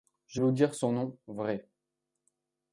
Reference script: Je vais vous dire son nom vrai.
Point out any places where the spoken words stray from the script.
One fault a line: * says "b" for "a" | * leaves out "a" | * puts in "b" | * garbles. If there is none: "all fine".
* leaves out "vais"